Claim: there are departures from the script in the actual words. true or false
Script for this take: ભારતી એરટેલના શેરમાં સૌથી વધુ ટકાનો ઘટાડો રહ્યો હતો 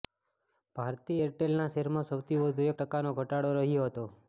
false